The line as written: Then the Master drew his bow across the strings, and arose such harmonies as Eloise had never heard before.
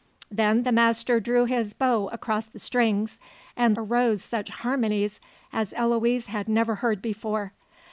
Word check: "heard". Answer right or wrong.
right